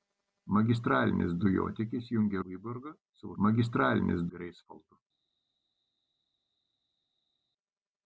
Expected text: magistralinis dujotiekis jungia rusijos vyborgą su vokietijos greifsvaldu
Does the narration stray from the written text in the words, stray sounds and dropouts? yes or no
yes